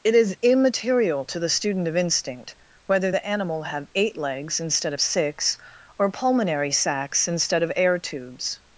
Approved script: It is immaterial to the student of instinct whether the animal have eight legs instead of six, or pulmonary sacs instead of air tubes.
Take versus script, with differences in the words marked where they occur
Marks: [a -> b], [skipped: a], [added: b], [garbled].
It is immaterial to the student of instinct whether the animal have eight legs instead of six, or pulmonary sacs instead of air tubes.